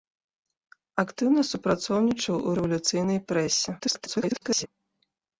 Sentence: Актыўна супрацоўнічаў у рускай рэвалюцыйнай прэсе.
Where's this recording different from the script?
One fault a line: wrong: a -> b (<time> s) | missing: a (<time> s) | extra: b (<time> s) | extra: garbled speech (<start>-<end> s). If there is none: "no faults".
missing: рускай (2.6 s)
extra: garbled speech (3.8-4.7 s)